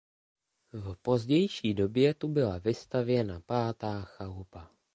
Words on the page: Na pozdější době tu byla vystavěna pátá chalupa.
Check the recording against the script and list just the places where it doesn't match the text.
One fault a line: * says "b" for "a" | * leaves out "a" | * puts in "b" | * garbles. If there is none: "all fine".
* says "V" for "Na"